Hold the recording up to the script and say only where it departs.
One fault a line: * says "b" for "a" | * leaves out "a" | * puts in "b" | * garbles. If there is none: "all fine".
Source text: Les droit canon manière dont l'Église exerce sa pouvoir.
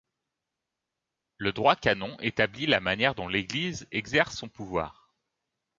* says "Le" for "Les"
* puts in "établit la"
* says "son" for "sa"